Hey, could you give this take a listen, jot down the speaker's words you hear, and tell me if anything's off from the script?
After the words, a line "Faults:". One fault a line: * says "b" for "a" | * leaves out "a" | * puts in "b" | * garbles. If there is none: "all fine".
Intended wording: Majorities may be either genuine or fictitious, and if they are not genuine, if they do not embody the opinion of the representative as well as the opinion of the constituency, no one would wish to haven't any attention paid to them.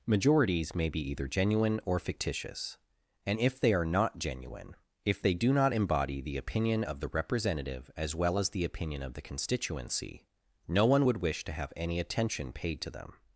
Majorities may be either genuine or fictitious, and if they are not genuine, if they do not embody the opinion of the representative as well as the opinion of the constituency, no one would wish to have any attention paid to them.
Faults:
* says "have" for "haven't"